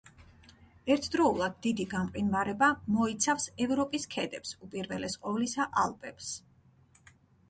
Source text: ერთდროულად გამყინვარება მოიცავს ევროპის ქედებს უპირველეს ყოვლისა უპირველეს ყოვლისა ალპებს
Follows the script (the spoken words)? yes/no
no